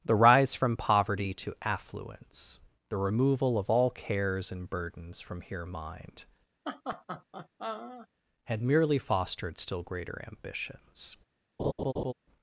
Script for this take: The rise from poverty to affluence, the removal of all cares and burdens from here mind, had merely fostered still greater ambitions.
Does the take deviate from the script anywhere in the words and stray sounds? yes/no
yes